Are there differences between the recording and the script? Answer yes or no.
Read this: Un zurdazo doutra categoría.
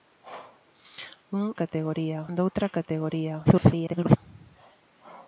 yes